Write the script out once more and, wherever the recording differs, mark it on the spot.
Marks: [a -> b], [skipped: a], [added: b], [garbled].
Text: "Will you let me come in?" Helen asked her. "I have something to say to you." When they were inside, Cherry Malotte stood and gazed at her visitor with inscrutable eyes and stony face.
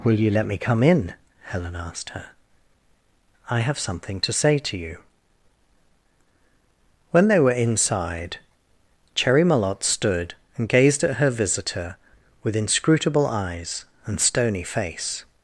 "Will you let me come in?" Helen asked her. "I have something to say to you." When they were inside, Cherry Malotte stood and gazed at her visitor with inscrutable eyes and stony face.